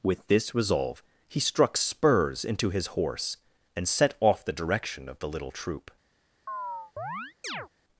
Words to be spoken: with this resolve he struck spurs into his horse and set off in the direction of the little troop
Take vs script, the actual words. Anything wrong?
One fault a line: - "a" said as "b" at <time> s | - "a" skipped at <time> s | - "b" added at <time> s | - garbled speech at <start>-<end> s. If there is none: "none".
- "in" skipped at 4.4 s